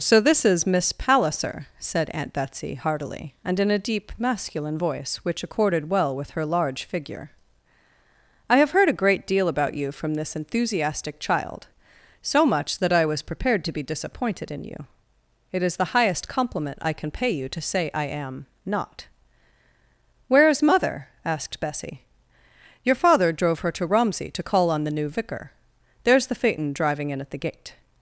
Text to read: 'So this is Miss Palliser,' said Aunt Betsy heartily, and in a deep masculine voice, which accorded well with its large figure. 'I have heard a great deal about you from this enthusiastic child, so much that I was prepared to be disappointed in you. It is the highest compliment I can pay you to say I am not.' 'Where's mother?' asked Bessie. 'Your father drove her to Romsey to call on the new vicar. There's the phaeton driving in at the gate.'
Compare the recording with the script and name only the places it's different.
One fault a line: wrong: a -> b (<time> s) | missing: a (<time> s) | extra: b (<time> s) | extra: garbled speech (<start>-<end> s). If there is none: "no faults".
wrong: its -> her (6.3 s)